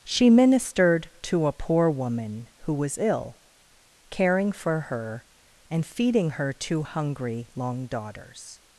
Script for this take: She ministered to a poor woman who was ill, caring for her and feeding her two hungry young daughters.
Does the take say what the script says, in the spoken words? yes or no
no